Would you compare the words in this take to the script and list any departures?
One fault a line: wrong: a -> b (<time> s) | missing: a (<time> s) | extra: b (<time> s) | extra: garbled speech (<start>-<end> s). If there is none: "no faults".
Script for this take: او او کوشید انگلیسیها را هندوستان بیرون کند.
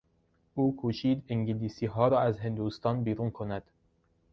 missing: او (0.8 s)
extra: از (2.2 s)